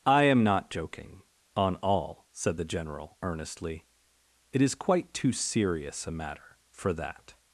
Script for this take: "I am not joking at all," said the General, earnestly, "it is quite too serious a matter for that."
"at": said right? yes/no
no